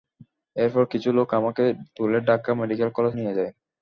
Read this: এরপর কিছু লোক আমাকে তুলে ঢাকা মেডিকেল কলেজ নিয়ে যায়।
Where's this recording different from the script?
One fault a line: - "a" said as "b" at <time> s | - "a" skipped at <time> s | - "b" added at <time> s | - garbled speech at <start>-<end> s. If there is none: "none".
none